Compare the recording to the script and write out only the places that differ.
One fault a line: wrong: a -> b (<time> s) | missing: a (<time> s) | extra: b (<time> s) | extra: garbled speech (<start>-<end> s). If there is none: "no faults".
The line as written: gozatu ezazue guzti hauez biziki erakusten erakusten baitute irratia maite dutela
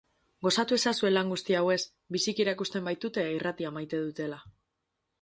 extra: lan (1.1 s)
missing: erakusten (2.9 s)